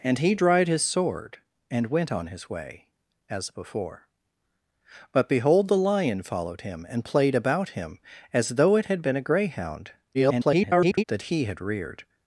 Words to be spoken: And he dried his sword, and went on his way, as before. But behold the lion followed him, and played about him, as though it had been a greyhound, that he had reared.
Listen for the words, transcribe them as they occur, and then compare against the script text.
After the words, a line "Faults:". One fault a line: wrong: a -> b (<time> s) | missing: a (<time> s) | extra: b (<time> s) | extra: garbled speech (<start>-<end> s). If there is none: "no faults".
And he dried his sword, and went on his way, as before. But behold the lion followed him, and played about him, as though it had been a greyhound, [garbled] that he had reared.
Faults:
extra: garbled speech (10.1-11.0 s)